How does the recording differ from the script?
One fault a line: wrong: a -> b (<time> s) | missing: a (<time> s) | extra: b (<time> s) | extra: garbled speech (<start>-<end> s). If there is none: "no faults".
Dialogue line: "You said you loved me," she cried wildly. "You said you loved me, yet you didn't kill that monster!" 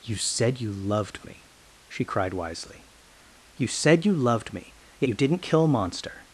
wrong: wildly -> wisely (2.3 s)
missing: that (5.7 s)